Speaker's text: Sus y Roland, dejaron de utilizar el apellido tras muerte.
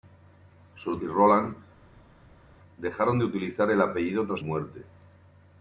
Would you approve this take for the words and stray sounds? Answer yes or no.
yes